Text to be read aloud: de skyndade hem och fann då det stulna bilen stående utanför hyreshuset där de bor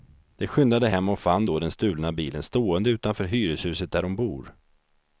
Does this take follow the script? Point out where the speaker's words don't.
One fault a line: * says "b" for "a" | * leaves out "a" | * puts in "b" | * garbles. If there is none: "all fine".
* says "den" for "det"